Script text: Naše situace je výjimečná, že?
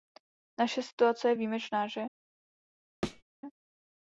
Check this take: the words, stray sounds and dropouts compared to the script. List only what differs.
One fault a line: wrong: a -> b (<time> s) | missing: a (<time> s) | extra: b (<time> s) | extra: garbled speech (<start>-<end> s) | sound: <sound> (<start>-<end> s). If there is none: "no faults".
sound: thud (3.0-3.2 s)